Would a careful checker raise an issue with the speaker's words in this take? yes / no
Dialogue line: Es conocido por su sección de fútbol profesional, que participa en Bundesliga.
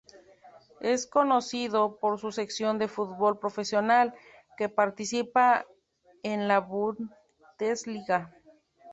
yes